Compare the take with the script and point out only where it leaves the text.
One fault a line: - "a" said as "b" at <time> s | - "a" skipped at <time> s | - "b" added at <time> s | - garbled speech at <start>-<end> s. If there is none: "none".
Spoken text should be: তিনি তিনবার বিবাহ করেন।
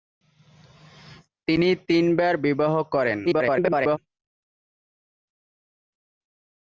- garbled speech at 3.2-4.0 s